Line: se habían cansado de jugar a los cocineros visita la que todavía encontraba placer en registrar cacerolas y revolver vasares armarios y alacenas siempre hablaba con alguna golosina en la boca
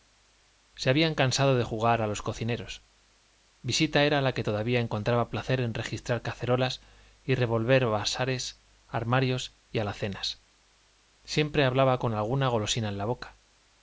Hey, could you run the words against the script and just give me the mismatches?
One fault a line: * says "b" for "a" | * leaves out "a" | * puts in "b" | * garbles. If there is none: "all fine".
* puts in "era"